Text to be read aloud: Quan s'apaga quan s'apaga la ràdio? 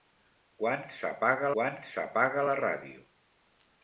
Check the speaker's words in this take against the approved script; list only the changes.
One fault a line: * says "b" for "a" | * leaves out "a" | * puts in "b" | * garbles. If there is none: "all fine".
all fine